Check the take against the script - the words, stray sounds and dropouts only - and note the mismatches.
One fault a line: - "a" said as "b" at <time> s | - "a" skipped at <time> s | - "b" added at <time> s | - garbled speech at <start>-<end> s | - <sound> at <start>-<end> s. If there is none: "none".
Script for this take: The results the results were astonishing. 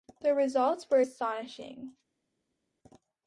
- "the results" skipped at 0.9 s